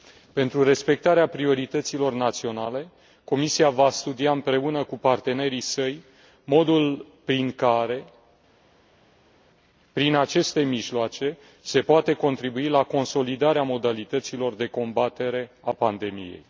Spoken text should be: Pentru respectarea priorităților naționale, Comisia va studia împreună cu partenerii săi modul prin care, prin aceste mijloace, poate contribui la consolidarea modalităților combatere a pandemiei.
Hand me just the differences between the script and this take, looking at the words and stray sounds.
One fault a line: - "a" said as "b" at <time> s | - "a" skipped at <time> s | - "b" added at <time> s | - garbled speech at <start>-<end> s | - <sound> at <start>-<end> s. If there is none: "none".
- "se" added at 11.6 s
- "de" added at 14.5 s